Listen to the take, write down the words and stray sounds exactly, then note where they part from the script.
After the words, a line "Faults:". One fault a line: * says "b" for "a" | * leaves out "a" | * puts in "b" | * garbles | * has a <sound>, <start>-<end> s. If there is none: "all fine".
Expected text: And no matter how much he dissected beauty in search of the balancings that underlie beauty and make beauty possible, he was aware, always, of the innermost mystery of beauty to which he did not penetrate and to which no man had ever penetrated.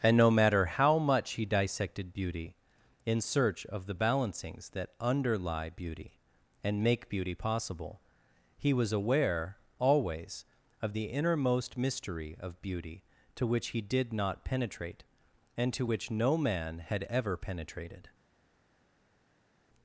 And no matter how much he dissected beauty in search of the balancings that underlie beauty and make beauty possible, he was aware, always, of the innermost mystery of beauty to which he did not penetrate and to which no man had ever penetrated.
Faults:
all fine